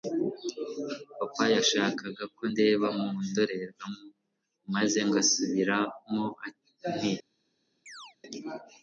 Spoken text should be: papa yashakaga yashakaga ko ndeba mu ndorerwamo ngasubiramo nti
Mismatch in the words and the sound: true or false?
true